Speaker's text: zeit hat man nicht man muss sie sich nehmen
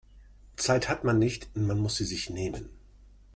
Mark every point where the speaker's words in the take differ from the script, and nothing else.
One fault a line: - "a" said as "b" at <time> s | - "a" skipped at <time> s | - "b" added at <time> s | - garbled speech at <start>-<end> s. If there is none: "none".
none